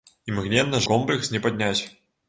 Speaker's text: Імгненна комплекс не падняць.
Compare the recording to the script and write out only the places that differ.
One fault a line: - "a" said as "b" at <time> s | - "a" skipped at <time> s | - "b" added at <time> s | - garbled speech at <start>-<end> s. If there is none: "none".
none